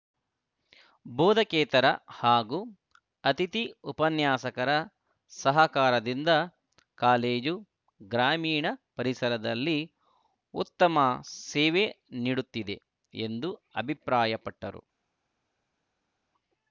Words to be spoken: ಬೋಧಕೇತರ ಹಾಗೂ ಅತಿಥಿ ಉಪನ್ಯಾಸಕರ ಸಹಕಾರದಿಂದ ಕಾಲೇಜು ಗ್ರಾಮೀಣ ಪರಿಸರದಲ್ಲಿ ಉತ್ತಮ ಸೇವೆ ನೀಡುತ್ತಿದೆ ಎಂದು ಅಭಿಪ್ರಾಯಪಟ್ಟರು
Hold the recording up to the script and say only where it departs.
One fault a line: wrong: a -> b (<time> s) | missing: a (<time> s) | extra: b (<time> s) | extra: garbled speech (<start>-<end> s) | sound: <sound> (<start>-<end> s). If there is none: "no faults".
no faults